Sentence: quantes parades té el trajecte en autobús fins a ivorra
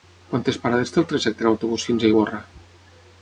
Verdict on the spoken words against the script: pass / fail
pass